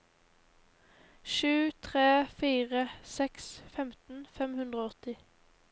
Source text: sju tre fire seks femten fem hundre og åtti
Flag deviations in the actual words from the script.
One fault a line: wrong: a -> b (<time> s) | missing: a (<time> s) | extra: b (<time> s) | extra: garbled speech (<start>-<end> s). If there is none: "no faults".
no faults